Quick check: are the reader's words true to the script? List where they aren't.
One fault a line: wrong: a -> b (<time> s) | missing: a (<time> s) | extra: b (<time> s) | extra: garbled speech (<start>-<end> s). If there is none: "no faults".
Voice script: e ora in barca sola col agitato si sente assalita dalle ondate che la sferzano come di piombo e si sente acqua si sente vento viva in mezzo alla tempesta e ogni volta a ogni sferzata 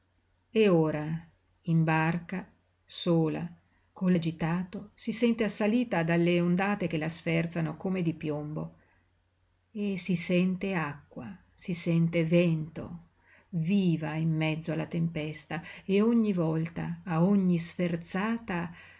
no faults